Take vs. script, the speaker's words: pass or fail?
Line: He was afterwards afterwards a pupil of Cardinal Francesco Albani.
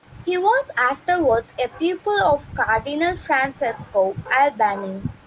fail